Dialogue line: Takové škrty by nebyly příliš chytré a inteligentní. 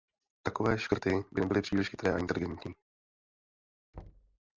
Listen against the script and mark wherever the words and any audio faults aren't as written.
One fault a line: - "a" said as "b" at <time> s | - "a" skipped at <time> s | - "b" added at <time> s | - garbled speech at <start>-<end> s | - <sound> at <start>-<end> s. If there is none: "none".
- thud at 3.9-4.4 s